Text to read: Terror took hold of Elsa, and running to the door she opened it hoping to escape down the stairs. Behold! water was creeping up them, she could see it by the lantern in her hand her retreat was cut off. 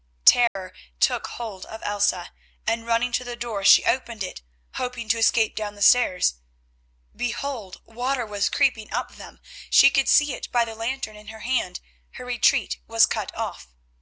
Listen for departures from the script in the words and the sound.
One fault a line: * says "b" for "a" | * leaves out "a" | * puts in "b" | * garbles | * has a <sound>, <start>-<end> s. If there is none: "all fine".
* has a dropout, 0.5-0.6 s